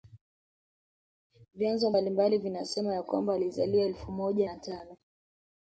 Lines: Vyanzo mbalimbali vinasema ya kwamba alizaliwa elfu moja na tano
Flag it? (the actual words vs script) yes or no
no